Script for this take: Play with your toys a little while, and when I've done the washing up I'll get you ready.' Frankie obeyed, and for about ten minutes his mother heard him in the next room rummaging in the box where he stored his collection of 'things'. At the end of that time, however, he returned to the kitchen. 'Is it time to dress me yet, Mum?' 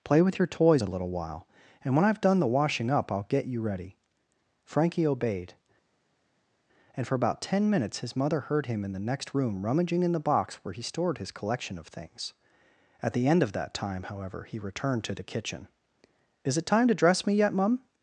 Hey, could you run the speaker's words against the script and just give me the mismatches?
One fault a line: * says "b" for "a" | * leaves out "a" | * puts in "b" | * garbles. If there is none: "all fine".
all fine